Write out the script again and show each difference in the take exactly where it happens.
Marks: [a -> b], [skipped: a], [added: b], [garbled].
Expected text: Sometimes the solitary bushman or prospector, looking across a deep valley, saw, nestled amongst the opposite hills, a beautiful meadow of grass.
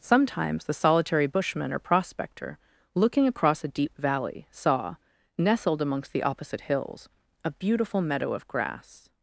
Sometimes the solitary bushman or prospector, looking across a deep valley, saw, nestled amongst the opposite hills, a beautiful meadow of grass.